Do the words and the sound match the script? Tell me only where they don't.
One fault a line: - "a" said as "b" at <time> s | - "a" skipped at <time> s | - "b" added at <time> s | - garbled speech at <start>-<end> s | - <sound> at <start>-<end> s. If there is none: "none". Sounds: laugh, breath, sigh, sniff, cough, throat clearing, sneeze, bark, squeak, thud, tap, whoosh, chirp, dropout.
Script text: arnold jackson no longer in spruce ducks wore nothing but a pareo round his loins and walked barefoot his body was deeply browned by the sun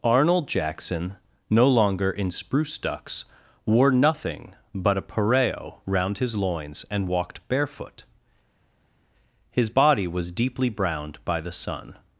none